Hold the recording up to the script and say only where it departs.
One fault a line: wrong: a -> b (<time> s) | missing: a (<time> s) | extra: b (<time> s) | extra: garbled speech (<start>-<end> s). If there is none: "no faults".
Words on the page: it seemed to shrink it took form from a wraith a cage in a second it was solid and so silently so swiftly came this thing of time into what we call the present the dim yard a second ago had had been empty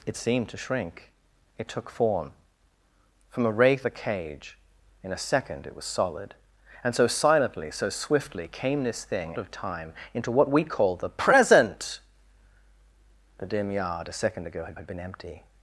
no faults